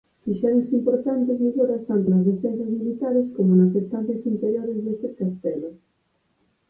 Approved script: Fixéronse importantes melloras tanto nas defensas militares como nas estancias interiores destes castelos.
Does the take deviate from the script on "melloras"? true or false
false